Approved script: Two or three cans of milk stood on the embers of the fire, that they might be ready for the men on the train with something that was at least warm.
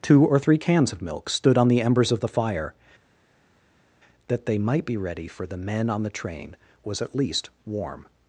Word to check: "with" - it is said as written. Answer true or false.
false